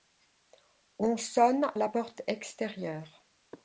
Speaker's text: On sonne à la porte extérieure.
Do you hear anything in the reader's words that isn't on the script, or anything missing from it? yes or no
yes